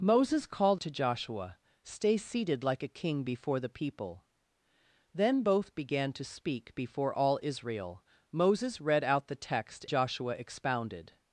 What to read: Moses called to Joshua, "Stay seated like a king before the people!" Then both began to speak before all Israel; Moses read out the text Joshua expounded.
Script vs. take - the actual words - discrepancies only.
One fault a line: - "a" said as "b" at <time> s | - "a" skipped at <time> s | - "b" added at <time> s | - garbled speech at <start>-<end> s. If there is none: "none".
none